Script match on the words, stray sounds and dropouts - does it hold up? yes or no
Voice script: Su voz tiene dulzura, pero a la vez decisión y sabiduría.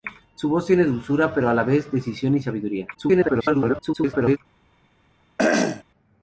no